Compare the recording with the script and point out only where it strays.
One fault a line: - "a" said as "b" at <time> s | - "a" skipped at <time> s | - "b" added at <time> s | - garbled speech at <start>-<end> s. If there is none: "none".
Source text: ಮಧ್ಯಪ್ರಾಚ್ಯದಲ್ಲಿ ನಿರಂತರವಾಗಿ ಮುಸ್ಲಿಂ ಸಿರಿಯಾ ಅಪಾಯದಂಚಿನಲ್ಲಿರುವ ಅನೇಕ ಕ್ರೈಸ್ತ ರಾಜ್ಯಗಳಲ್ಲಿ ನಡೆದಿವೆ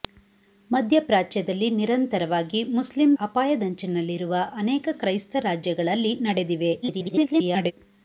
- "ಸಿರಿಯಾ" skipped at 3.1 s
- garbled speech at 6.8-7.7 s